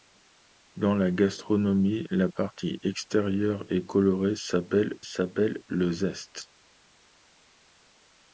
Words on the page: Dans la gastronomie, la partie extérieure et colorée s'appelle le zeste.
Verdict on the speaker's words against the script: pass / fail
fail